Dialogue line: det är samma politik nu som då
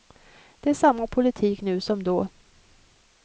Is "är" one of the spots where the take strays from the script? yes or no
no